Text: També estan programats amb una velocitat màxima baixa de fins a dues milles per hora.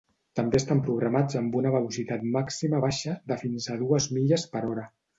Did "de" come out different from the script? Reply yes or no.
no